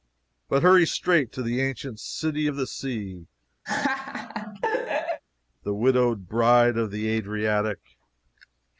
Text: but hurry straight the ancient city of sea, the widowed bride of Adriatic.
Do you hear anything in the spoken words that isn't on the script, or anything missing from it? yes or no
yes